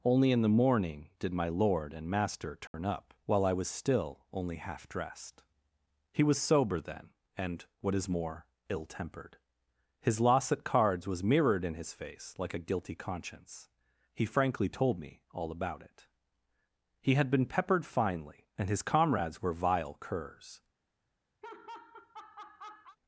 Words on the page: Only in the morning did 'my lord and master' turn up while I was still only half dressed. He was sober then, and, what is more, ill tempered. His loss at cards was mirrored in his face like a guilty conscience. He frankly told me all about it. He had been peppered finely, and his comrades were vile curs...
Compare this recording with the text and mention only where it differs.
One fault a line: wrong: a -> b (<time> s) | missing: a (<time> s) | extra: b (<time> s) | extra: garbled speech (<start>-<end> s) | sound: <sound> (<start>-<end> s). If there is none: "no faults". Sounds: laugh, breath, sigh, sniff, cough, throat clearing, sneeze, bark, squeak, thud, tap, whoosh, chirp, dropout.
sound: dropout (2.7-2.7 s)
sound: laugh (21.4-23.0 s)